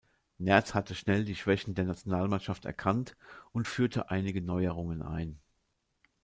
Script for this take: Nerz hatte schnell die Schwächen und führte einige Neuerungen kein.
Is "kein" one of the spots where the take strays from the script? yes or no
yes